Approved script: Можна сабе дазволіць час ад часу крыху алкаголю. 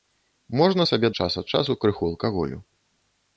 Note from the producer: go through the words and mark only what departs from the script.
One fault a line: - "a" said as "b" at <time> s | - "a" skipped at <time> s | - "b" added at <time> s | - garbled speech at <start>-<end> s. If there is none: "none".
- "дазволіць" skipped at 1.1 s